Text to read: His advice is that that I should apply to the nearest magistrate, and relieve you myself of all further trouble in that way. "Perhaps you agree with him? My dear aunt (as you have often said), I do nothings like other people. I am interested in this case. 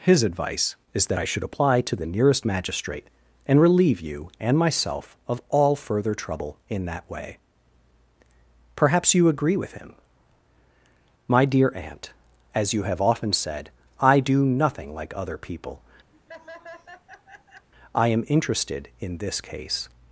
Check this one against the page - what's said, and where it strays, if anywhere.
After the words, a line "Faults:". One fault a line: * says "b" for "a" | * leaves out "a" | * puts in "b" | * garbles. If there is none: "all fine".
His advice is that I should apply to the nearest magistrate, and relieve you and myself of all further trouble in that way. "Perhaps you agree with him? My dear aunt (as you have often said), I do nothing like other people. I am interested in this case.
Faults:
* leaves out "that"
* puts in "and"
* says "nothing" for "nothings"